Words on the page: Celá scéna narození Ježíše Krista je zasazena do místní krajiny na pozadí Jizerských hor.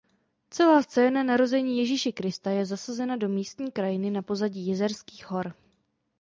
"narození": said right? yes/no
yes